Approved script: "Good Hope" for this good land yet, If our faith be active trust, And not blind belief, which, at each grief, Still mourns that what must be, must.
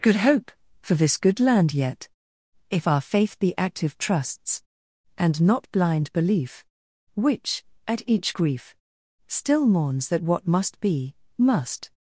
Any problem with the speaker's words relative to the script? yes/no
yes